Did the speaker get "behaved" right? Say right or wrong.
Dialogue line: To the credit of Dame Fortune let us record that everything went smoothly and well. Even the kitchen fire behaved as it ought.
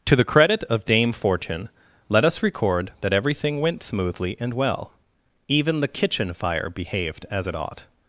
right